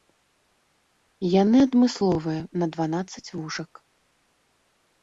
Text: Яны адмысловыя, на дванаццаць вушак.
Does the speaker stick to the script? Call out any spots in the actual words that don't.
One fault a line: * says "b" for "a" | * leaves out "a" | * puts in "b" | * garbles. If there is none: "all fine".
all fine